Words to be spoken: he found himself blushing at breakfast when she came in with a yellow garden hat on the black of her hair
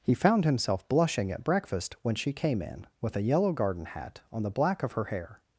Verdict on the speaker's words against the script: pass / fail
pass